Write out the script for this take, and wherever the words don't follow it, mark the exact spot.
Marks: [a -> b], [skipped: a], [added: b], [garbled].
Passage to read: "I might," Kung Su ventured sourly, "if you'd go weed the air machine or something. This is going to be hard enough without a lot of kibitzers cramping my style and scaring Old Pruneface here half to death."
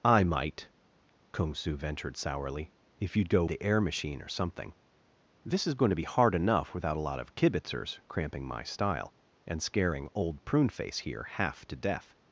"I might," Kung Su ventured sourly, "if you'd go [skipped: weed] the air machine or something. This is going to be hard enough without a lot of kibitzers cramping my style and scaring Old Pruneface here half to death."